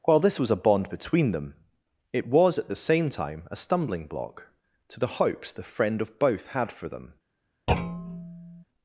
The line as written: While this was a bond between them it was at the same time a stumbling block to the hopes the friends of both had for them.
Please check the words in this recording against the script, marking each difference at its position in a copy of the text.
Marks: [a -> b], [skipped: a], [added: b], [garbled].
While this was a bond between them it was at the same time a stumbling block to the hopes the [friends -> friend] of both had for them.